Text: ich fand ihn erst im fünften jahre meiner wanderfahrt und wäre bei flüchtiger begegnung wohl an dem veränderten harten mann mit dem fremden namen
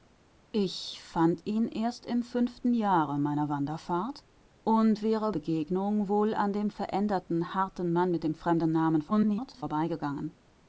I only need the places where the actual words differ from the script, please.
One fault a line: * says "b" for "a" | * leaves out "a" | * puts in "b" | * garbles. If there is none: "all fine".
* leaves out "bei flüchtiger"
* garbles